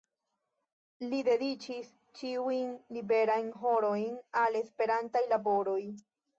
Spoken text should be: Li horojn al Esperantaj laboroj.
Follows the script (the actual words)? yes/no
no